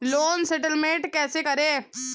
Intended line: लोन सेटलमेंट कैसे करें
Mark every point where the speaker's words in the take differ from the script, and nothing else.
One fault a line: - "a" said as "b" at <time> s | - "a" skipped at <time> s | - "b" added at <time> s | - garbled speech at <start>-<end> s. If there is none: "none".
none